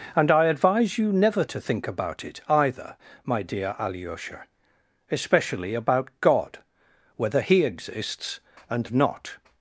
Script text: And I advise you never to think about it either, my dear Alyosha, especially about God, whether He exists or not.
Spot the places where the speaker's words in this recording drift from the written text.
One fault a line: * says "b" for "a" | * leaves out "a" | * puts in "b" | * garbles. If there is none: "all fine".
* says "and" for "or"